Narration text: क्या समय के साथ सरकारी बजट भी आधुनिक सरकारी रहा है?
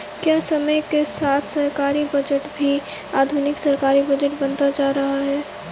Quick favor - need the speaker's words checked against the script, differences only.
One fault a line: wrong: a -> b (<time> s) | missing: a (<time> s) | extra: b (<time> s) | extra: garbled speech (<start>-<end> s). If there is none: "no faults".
extra: बजट बनता जा (4.0 s)